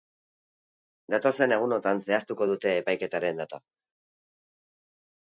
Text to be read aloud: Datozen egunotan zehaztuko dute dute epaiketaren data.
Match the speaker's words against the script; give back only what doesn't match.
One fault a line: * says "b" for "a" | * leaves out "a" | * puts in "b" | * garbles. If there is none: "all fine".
* leaves out "dute"